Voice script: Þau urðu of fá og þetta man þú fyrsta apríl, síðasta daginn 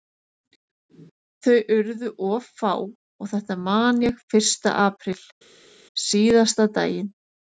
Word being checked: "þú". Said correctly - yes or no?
no